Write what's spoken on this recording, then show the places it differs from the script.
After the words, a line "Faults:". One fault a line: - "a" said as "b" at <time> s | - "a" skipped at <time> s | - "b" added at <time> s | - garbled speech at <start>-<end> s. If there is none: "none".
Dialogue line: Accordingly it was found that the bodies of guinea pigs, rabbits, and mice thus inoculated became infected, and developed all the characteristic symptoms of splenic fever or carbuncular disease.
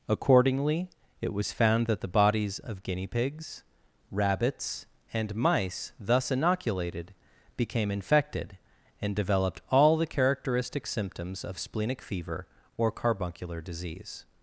Accordingly it was found that the bodies of guinea pigs, rabbits, and mice thus inoculated became infected, and developed all the characteristic symptoms of splenic fever or carbuncular disease.
Faults:
none